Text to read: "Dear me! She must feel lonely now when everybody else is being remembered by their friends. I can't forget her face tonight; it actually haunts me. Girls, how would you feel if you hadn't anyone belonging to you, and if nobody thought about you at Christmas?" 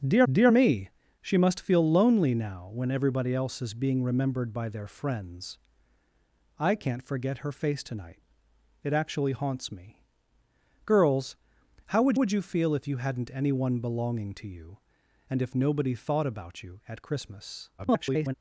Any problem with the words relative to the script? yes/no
yes